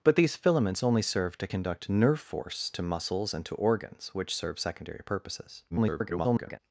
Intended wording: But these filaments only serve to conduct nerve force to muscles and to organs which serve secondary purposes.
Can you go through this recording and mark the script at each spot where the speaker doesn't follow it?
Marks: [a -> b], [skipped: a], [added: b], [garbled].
But these filaments only serve to conduct nerve force to muscles and to organs which serve secondary purposes. [garbled]